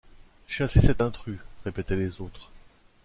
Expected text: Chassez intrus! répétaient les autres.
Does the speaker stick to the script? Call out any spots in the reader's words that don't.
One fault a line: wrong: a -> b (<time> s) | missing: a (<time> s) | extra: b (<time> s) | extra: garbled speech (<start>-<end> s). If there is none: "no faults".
extra: cet (0.8 s)